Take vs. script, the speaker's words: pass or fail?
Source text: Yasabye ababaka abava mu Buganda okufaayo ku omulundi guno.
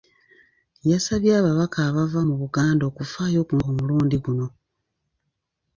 pass